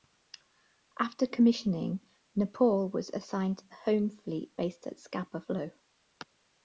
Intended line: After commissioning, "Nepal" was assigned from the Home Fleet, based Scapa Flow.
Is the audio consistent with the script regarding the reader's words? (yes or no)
no